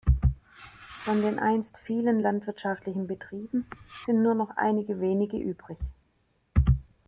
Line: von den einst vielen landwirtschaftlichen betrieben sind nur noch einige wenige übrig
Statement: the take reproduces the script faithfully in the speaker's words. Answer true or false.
true